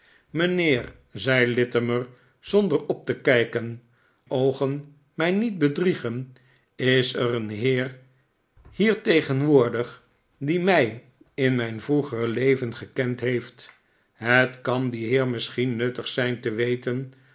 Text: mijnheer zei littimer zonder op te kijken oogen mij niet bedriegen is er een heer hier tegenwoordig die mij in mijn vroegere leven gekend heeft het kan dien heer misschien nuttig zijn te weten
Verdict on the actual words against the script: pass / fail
pass